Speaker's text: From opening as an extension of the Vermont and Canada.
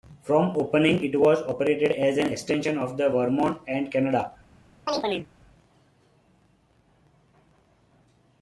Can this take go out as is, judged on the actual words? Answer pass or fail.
fail